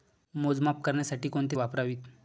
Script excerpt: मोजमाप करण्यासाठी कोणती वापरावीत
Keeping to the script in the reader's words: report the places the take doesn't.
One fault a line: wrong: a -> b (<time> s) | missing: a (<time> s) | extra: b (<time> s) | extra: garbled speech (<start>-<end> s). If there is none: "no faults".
no faults